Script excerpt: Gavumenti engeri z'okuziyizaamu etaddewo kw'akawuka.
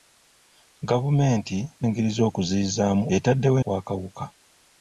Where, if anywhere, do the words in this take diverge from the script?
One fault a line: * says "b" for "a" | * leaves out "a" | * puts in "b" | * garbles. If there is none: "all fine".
all fine